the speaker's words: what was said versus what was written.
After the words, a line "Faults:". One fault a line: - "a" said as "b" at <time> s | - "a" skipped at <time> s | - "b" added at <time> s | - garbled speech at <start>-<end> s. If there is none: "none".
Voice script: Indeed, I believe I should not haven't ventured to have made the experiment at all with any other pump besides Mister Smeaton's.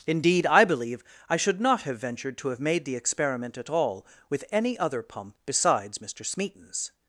Indeed, I believe I should not have ventured to have made the experiment at all with any other pump besides Mister Smeaton's.
Faults:
- "haven't" said as "have" at 1.8 s